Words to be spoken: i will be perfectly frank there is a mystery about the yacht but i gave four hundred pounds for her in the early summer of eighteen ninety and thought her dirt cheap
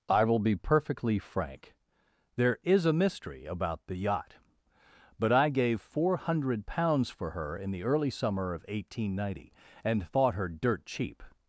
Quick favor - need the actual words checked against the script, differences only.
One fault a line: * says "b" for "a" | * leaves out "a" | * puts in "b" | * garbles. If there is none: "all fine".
all fine